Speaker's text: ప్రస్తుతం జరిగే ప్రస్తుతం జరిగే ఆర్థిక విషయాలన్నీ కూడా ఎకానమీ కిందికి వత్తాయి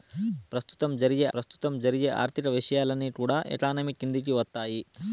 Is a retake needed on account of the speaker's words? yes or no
no